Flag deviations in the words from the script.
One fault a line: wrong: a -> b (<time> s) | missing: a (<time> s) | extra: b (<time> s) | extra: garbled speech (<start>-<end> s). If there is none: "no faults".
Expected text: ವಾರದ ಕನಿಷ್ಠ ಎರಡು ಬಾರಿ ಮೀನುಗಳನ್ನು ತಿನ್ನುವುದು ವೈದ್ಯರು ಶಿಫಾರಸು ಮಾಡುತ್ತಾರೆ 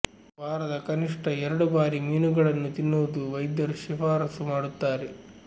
no faults